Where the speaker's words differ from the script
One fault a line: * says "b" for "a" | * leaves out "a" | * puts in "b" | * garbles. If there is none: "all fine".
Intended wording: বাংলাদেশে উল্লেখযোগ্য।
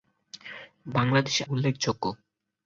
all fine